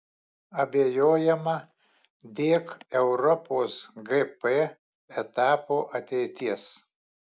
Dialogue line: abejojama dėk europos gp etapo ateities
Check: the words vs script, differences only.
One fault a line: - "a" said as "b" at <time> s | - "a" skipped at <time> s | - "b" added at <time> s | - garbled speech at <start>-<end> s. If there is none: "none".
none